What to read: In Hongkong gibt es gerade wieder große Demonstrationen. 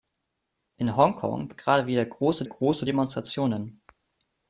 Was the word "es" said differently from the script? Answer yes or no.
yes